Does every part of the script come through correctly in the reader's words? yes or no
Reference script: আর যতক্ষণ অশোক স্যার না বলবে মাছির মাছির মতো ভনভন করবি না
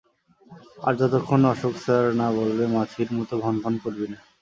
no